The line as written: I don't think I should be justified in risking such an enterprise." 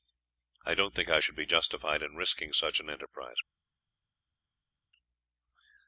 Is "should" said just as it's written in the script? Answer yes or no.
yes